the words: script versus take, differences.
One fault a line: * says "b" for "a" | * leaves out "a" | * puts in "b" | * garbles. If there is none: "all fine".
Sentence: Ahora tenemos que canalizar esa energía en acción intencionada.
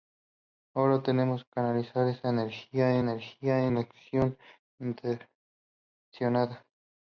* leaves out "que"
* puts in "energía"